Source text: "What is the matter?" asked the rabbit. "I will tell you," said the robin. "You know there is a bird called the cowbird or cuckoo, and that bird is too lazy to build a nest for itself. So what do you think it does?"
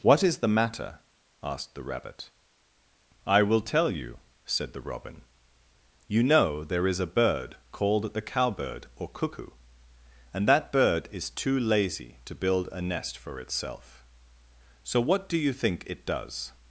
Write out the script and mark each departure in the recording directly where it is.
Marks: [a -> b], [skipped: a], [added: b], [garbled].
"What is the matter?" asked the rabbit. "I will tell you," said the robin. "You know there is a bird called the cowbird or cuckoo, and that bird is too lazy to build a nest for itself. So what do you think it does?"